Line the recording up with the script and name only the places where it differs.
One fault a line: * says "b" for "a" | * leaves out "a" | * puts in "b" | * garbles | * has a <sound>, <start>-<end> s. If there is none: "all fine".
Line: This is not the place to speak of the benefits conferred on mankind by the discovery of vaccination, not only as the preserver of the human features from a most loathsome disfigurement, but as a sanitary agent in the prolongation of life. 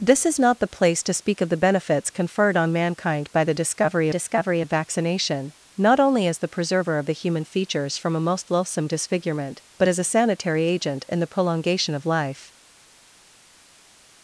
* puts in "discovery"